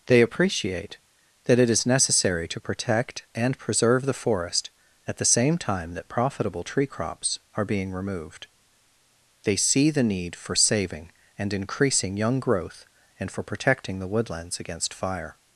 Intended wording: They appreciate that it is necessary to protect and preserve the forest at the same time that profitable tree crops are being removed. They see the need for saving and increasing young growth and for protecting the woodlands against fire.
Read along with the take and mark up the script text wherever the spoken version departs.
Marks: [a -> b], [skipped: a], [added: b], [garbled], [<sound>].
They appreciate that it is necessary to protect and preserve the forest at the same time that profitable tree crops are being removed. They see the need for saving and increasing young growth and for protecting the woodlands against fire.